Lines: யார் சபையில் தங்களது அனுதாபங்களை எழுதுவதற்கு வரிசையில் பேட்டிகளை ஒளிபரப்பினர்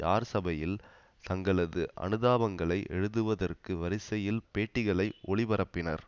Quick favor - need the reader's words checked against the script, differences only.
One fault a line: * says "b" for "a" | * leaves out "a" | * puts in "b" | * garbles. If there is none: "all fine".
all fine